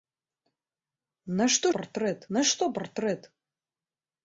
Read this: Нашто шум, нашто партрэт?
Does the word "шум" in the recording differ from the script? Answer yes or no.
yes